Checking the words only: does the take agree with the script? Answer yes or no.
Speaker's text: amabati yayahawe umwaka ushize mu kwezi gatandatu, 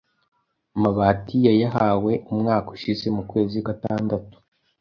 yes